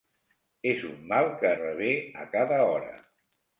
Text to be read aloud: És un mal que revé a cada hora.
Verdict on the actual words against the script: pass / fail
pass